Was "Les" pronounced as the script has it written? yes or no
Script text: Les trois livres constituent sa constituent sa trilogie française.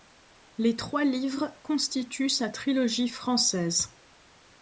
yes